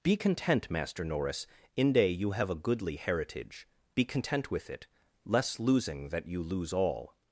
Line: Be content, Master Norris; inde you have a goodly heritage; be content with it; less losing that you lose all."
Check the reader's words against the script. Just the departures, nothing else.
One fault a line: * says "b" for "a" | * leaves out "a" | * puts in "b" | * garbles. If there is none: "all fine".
all fine